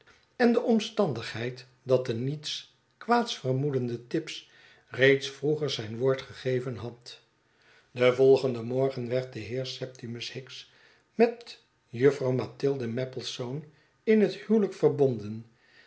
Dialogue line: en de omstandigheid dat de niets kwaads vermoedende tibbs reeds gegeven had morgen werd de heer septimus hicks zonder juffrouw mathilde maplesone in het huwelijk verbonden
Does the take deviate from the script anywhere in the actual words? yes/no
yes